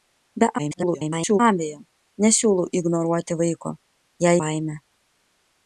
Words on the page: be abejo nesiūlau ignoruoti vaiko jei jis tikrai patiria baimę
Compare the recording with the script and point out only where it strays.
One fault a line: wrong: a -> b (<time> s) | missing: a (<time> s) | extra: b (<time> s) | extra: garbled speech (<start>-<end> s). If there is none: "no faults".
extra: garbled speech (0.6-1.4 s)
missing: jis tikrai patiria (4.4 s)